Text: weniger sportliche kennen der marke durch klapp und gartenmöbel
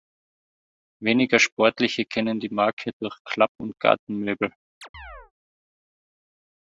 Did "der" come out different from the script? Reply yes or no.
yes